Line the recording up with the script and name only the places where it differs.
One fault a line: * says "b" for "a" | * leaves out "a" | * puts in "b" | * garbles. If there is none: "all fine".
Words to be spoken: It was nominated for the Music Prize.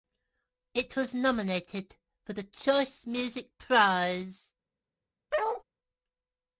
* puts in "Choice"